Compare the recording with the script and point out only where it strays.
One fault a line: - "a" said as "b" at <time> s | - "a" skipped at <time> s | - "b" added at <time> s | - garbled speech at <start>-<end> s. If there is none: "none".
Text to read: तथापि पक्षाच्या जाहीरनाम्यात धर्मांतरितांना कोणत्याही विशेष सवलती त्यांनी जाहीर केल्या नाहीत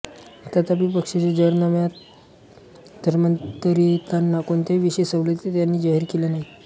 none